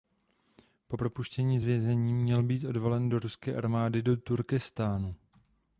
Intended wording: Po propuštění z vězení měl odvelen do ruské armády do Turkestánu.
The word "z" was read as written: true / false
true